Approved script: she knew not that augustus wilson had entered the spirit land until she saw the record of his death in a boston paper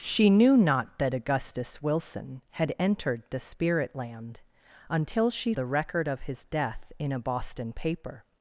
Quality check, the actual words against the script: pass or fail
fail